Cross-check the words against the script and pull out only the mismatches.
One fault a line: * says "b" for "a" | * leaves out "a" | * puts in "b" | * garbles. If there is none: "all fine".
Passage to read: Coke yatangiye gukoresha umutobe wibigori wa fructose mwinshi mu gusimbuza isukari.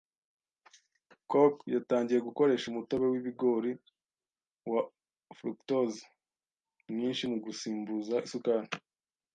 all fine